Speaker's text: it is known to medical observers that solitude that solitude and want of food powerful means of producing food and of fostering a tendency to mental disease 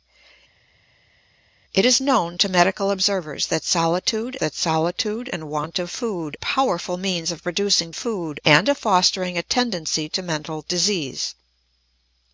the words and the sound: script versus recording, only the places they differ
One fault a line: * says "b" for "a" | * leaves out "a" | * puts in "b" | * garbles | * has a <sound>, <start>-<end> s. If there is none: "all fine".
all fine